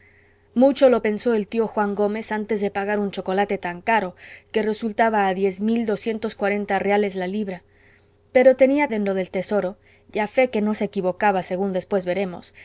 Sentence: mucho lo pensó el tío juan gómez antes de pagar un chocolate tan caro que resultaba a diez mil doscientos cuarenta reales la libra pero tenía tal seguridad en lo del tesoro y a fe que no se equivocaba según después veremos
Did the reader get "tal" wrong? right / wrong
wrong